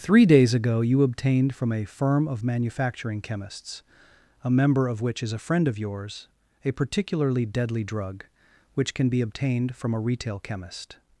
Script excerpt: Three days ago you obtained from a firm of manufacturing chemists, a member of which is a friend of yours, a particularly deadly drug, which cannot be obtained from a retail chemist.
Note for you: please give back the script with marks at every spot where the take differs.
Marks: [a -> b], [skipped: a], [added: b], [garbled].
Three days ago you obtained from a firm of manufacturing chemists, a member of which is a friend of yours, a particularly deadly drug, which [cannot -> can] be obtained from a retail chemist.